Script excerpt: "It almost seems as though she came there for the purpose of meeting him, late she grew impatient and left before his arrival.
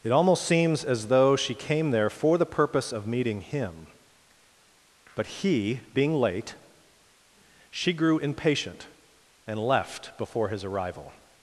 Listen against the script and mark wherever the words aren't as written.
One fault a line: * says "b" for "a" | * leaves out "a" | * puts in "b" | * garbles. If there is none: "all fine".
* puts in "but he being"